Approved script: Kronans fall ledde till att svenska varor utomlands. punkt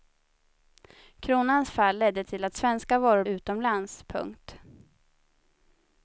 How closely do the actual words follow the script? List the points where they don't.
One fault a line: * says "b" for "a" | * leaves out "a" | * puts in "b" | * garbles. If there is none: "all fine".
all fine